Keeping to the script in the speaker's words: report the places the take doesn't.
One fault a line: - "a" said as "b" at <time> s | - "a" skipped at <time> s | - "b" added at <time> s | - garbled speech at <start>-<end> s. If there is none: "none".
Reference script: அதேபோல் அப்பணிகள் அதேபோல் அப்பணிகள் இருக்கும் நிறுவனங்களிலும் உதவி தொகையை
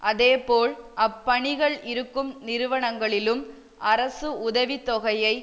- "அதேபோல் அப்பணிகள்" skipped at 1.8 s
- "அரசு" added at 3.8 s